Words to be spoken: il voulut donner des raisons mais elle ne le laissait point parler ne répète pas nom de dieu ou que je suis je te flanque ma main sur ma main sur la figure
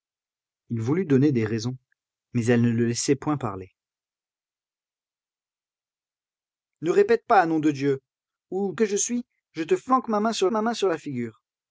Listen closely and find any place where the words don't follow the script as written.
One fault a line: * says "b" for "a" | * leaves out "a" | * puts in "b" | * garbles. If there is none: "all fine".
all fine